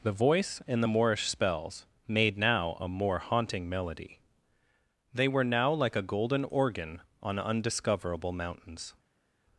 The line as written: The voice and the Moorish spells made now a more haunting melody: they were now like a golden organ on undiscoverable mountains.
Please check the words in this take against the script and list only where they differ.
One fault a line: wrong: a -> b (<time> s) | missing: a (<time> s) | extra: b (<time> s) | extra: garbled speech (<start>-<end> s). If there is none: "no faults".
no faults